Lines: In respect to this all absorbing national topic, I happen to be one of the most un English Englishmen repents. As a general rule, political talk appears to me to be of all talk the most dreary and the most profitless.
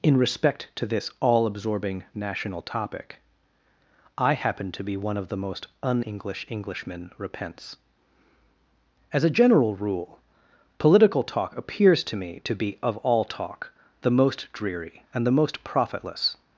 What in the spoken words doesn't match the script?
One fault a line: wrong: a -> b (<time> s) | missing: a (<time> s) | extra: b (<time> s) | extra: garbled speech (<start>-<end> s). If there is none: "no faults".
no faults